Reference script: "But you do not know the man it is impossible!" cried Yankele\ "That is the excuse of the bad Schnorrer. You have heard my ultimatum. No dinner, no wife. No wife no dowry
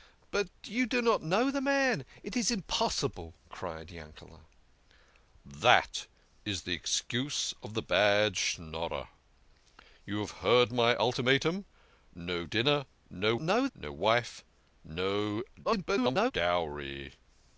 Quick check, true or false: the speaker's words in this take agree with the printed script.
false